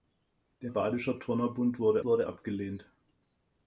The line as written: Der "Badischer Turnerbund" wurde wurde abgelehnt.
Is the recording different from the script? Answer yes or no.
no